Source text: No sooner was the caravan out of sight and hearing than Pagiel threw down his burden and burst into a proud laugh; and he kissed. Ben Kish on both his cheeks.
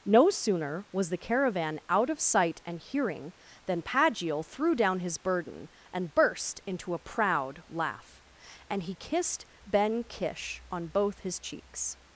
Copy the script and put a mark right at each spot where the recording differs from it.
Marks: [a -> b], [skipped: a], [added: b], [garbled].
No sooner was the caravan out of sight and hearing than Pagiel threw down his burden and burst into a proud laugh; and he kissed. Ben Kish on both his cheeks.